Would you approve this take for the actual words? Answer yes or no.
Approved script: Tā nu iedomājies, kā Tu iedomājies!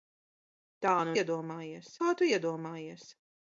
yes